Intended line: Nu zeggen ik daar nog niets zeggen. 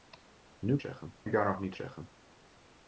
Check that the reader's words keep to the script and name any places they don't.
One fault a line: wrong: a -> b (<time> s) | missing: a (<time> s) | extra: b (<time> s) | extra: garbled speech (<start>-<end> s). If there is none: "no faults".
no faults